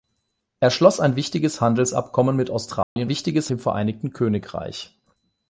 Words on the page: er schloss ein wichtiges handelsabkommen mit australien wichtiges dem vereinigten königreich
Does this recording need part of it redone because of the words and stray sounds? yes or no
yes